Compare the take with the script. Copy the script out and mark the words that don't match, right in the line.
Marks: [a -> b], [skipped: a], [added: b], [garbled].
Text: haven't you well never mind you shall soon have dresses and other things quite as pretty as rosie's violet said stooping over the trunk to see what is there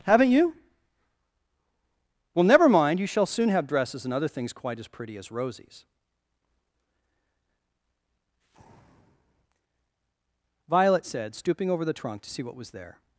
haven't you well never mind you shall soon have dresses and other things quite as pretty as rosie's violet said stooping over the trunk to see what [is -> was] there